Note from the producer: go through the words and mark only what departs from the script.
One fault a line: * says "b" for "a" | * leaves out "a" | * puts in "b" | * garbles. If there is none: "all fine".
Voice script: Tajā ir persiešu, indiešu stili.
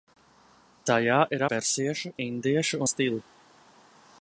all fine